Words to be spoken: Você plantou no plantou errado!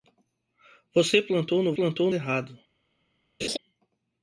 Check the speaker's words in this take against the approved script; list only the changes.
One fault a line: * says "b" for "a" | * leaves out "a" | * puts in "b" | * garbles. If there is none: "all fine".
all fine